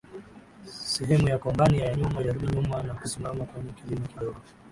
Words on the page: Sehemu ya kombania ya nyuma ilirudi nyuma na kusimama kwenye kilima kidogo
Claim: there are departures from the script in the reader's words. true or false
false